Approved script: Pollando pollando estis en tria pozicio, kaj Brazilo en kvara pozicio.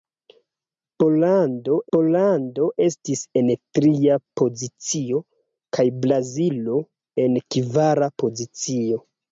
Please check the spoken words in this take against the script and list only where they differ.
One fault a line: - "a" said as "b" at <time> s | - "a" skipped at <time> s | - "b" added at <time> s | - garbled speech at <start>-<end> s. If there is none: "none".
none